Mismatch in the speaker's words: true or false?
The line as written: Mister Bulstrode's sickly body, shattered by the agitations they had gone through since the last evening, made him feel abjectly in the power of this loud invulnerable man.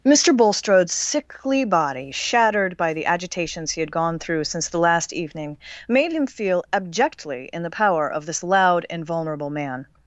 true